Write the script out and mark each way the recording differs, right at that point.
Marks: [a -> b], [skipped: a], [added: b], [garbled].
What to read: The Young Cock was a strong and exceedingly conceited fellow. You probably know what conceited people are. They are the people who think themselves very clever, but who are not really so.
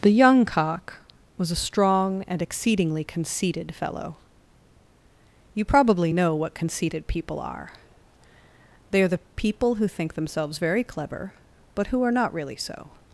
The Young Cock was a strong and exceedingly conceited fellow. You probably know what conceited people are. They are the people who think themselves very clever, but who are not really so.